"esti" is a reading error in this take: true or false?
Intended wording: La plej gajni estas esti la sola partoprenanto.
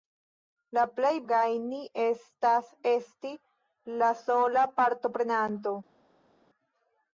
false